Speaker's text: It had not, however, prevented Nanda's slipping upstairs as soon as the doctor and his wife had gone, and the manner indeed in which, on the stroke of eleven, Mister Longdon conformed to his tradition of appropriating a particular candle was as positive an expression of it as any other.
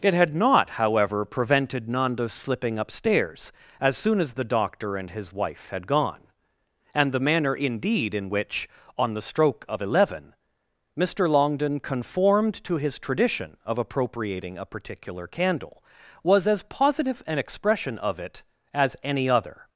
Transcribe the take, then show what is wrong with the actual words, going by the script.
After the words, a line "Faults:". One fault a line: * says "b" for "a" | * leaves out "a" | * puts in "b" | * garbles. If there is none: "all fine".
It had not, however, prevented Nanda's slipping upstairs as soon as the doctor and his wife had gone, and the manner indeed in which, on the stroke of eleven, Mister Longdon conformed to his tradition of appropriating a particular candle was as positive an expression of it as any other.
Faults:
all fine